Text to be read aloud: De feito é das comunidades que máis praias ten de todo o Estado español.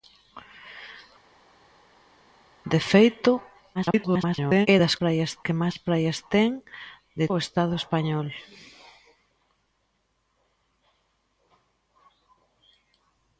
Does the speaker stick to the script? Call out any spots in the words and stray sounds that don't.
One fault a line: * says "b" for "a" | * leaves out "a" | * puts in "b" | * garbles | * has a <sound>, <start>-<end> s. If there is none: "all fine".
* garbles
* says "praias" for "comunidades"
* leaves out "todo"